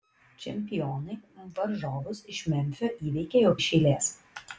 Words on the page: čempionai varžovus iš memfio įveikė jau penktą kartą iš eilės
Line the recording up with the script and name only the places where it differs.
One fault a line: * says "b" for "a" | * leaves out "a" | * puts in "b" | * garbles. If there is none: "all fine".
* leaves out "penktą kartą"